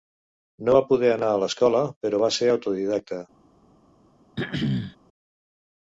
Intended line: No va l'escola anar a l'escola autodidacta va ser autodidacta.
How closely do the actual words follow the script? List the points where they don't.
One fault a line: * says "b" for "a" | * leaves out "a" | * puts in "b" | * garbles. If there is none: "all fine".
* says "poder" for "l'escola"
* says "però" for "autodidacta"